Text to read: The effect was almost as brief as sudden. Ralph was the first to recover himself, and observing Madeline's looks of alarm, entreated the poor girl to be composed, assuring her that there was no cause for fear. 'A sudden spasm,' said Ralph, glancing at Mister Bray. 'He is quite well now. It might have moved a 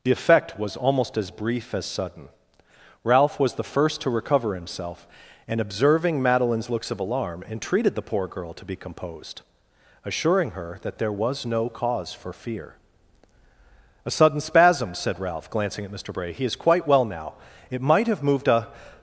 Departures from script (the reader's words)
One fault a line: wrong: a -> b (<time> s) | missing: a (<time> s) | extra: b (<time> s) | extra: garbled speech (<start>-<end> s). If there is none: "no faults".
no faults